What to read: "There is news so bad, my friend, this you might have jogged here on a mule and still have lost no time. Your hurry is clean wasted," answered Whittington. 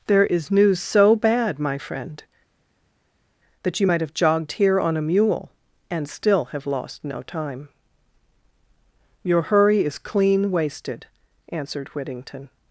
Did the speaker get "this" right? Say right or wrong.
wrong